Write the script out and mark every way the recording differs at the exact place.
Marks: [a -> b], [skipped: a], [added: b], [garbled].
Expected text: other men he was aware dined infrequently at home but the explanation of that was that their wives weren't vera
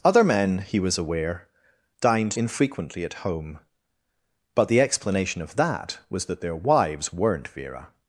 other men he was aware dined infrequently at home but the explanation of that was that their wives weren't vera